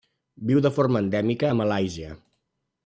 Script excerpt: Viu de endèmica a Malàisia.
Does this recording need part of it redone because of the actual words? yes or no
yes